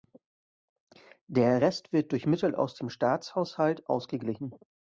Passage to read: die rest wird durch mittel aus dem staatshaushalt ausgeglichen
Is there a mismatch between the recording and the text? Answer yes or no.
yes